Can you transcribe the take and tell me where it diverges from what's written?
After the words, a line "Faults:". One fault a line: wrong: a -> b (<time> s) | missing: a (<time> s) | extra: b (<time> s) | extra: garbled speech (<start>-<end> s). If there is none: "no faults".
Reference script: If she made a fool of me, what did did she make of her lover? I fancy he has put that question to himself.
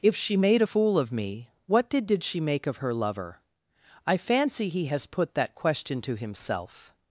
If she made a fool of me, what did did she make of her lover? I fancy he has put that question to himself.
Faults:
no faults